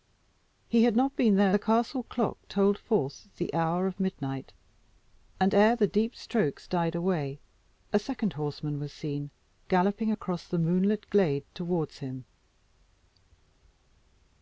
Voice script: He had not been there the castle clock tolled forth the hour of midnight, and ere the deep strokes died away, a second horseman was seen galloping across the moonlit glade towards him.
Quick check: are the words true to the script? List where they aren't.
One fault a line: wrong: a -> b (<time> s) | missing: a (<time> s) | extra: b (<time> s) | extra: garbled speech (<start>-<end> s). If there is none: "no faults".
no faults